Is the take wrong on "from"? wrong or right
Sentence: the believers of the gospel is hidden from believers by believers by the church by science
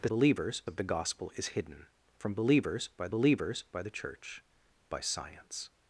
right